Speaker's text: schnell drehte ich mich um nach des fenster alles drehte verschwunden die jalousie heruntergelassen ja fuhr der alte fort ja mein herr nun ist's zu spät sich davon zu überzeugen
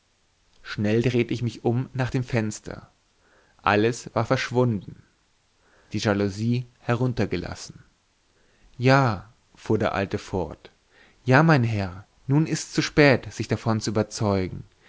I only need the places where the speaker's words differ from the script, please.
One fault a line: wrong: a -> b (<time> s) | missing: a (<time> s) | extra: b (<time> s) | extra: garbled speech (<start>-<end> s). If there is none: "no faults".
wrong: des -> dem (2.1 s)
wrong: drehte -> war (4.1 s)